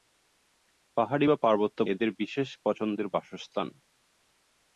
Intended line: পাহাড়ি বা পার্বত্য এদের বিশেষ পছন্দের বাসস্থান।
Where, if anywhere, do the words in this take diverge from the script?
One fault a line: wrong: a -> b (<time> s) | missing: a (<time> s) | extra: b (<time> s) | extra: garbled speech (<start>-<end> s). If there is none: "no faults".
no faults